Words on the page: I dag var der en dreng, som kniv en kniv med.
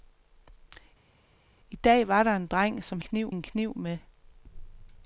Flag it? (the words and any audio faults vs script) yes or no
no